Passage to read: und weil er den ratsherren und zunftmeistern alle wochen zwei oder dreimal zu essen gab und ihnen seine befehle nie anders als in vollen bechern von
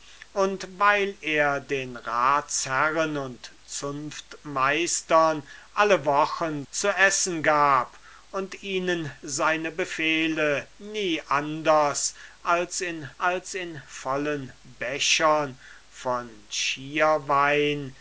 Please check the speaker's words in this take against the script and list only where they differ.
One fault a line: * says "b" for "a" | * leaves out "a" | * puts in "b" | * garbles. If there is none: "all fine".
* leaves out "zwei oder dreimal"
* puts in "als in"